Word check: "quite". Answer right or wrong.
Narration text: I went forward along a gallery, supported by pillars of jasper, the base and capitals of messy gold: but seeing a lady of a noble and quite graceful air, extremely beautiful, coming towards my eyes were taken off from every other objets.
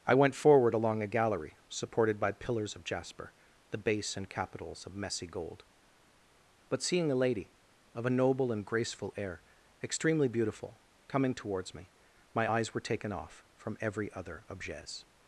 wrong